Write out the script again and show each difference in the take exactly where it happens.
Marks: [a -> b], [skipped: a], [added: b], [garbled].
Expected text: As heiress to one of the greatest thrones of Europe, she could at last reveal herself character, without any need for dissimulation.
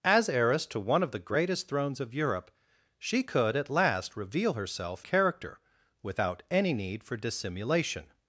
As heiress to one of the greatest thrones of Europe, she could at last reveal herself character, without any need for dissimulation.